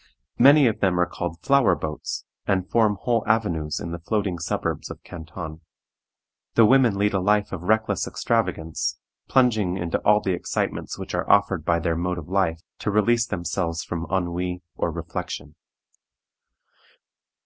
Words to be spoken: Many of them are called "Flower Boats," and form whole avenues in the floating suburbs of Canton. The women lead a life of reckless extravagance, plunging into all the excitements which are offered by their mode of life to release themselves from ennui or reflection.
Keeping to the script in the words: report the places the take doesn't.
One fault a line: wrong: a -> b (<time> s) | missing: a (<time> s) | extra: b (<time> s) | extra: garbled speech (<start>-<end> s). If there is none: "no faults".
no faults